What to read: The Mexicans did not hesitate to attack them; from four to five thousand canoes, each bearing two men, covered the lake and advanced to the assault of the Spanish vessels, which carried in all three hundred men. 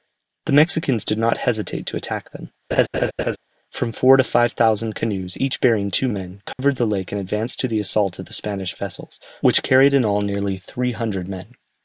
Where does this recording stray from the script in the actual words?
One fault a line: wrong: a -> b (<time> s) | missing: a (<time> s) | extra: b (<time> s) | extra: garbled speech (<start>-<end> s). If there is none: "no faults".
extra: nearly (10.2 s)